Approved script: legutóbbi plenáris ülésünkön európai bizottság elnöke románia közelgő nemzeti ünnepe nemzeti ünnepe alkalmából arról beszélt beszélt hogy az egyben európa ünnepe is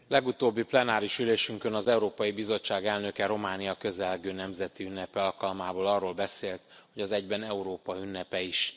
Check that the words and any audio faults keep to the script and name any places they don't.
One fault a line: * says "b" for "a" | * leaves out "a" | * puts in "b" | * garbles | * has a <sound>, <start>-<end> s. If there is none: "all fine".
* puts in "az"
* leaves out "nemzeti ünnepe"
* leaves out "beszélt"